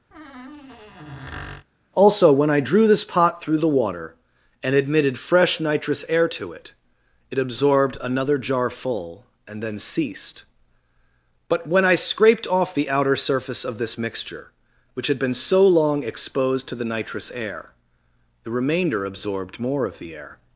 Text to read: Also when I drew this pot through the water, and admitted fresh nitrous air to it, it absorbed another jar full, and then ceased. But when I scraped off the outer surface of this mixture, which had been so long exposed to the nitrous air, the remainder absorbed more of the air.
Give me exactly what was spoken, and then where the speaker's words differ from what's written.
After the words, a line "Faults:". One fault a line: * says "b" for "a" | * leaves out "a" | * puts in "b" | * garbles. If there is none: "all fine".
Also when I drew this pot through the water, and admitted fresh nitrous air to it, it absorbed another jar full, and then ceased. But when I scraped off the outer surface of this mixture, which had been so long exposed to the nitrous air, the remainder absorbed more of the air.
Faults:
all fine